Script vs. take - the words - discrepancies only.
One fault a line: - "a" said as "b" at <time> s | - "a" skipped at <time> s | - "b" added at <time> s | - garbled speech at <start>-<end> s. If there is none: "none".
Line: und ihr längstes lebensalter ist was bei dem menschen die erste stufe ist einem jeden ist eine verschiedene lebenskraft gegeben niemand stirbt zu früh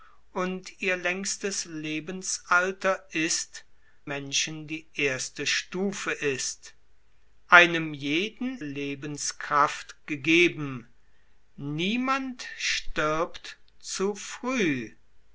- "was bei dem" skipped at 3.6 s
- "ist eine verschiedene" skipped at 8.6 s